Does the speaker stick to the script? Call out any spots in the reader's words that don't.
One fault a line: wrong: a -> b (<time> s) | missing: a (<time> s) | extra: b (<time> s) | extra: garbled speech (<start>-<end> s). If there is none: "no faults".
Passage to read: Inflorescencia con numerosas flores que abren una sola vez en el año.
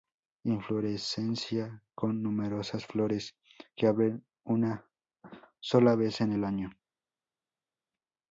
no faults